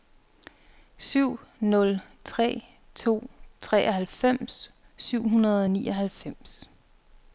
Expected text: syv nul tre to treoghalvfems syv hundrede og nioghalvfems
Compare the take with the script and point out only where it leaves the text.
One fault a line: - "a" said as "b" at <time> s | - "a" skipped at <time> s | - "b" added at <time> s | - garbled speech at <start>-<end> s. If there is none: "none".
none